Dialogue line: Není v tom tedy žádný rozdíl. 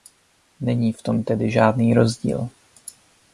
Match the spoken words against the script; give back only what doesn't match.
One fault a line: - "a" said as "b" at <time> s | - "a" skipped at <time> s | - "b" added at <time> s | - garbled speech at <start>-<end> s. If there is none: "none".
none